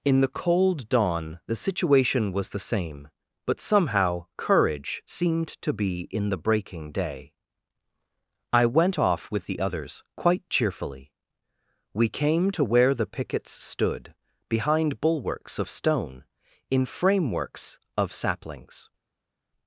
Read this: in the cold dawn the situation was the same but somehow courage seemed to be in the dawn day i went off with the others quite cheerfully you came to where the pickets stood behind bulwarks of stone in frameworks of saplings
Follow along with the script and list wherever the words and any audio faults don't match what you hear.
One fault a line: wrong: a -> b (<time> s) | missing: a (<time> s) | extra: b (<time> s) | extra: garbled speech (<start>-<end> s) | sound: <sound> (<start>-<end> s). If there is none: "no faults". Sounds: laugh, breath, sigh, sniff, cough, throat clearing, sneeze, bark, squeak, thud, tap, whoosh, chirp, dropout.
wrong: dawn -> breaking (6.4 s)
wrong: you -> we (11.9 s)